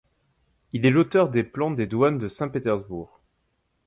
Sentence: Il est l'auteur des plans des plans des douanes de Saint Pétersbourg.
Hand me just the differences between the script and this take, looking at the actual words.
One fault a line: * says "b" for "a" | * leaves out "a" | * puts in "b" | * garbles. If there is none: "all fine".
* leaves out "plans des"